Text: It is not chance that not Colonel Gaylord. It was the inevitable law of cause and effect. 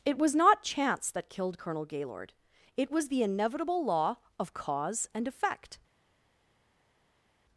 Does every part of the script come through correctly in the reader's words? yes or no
no